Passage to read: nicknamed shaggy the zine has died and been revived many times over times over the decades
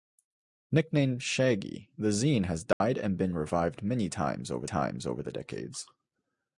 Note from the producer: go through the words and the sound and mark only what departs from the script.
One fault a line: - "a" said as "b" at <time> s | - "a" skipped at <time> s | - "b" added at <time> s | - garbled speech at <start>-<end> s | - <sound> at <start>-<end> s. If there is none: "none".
- dropout at 2.7-2.8 s